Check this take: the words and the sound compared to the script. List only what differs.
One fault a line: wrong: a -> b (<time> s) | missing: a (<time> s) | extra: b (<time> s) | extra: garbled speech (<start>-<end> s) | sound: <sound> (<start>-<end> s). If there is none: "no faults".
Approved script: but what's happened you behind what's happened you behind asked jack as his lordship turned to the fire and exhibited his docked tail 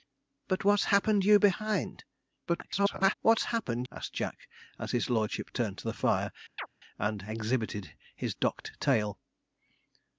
extra: garbled speech (2.5-3.1 s)
missing: you behind (3.9 s)
sound: chirp (6.6-6.7 s)